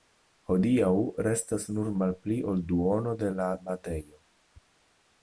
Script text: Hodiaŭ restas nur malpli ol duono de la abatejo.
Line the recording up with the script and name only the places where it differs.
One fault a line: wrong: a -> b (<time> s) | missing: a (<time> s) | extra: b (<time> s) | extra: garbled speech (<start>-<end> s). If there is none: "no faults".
no faults